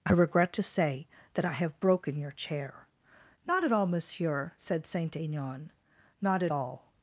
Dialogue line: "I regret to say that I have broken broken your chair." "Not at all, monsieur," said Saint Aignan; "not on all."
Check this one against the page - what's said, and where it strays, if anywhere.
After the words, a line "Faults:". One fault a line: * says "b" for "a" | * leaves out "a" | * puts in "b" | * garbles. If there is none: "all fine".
"I regret to say that I have broken your chair." "Not at all, monsieur," said Saint Aignan; "not at all."
Faults:
* leaves out "broken"
* says "at" for "on"